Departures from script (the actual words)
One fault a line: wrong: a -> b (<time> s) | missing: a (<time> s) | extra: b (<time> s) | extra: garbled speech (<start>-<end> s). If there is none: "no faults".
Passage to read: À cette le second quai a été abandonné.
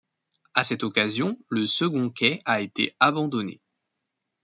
extra: occasion (0.8 s)